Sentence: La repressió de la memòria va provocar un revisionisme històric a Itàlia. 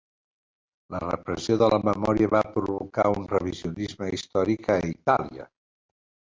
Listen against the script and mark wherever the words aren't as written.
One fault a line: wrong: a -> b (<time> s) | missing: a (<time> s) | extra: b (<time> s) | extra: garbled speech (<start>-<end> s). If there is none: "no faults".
no faults